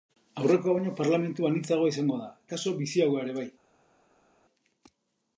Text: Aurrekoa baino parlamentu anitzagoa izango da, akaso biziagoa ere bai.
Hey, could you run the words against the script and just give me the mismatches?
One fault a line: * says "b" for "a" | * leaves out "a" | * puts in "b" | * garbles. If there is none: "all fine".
all fine